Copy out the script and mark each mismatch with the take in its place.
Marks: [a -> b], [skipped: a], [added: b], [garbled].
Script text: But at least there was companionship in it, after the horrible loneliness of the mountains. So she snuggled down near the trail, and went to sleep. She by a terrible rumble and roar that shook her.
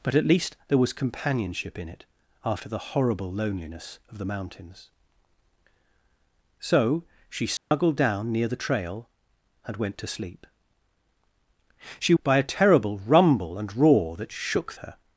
But at least there was companionship in it, after the horrible loneliness of the mountains. So she snuggled down near the trail, and went to sleep. She by a terrible rumble and roar that shook her.